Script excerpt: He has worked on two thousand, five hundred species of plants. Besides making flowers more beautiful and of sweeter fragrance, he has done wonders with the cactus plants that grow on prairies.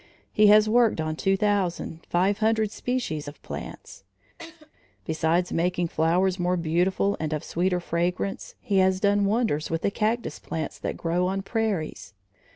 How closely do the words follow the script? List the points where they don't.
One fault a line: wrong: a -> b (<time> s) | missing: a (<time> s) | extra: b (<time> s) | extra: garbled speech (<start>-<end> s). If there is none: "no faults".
no faults